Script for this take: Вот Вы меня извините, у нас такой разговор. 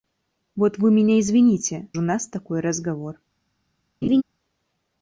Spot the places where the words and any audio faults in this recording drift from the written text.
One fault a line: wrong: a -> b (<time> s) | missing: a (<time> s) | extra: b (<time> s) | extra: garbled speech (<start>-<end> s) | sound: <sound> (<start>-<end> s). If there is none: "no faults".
sound: laugh (4.0-4.2 s)